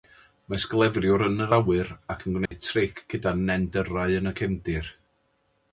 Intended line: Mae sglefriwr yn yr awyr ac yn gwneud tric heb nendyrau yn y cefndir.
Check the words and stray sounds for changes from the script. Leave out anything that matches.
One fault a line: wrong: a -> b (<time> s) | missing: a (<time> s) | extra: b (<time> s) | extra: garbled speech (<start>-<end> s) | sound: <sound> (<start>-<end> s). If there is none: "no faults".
sound: dropout (2.5-2.5 s)
wrong: heb -> gyda (3.1 s)